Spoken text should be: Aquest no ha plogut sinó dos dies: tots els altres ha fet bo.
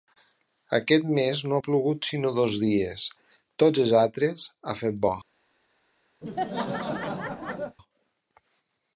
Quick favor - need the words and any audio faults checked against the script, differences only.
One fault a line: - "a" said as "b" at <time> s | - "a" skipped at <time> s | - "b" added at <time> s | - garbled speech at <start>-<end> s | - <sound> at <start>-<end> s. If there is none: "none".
- "mes" added at 1.2 s
- laugh at 6.2-7.8 s